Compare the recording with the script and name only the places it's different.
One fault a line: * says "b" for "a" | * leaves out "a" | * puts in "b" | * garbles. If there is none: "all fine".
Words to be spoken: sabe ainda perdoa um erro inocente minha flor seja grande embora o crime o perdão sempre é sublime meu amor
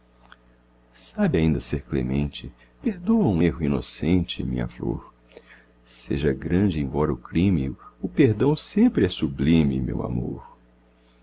* puts in "ser clemente"